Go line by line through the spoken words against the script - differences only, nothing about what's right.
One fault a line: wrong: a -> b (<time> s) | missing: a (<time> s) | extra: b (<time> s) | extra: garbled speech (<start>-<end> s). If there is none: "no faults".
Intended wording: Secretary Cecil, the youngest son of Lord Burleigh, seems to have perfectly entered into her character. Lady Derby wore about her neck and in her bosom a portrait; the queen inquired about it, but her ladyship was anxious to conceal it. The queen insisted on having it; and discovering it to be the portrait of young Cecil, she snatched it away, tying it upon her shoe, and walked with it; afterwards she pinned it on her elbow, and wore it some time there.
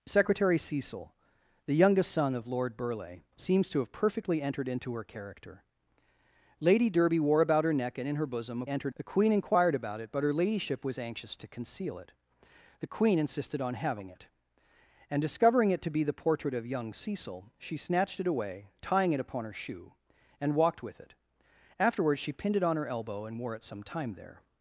wrong: portrait -> entered (8.7 s)